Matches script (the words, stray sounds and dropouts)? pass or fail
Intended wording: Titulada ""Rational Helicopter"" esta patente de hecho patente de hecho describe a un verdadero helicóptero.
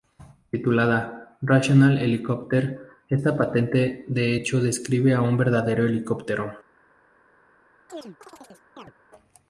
fail